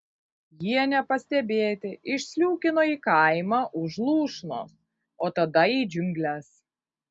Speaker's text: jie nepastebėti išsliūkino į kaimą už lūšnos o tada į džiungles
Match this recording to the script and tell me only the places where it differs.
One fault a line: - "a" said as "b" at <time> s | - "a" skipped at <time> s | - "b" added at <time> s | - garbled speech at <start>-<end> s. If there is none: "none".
none